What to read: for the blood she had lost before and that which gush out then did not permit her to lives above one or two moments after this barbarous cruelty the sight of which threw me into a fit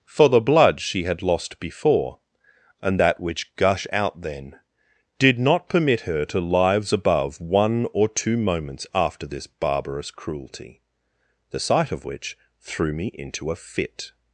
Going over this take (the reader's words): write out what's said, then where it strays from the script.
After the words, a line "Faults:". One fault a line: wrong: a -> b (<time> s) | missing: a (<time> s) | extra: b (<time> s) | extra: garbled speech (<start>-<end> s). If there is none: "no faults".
for the blood she had lost before and that which gush out then did not permit her to lives above one or two moments after this barbarous cruelty the sight of which threw me into a fit
Faults:
no faults